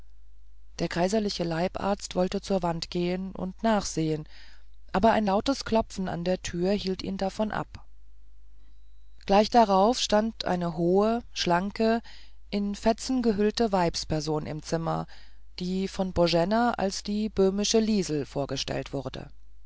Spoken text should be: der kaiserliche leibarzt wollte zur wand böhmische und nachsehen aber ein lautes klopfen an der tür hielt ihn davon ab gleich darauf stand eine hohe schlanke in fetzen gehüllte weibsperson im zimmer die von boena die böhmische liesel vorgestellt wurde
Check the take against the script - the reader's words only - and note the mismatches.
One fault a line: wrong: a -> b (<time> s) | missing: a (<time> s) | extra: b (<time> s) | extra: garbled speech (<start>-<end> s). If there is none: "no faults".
wrong: böhmische -> gehen (2.9 s)
extra: als (16.7 s)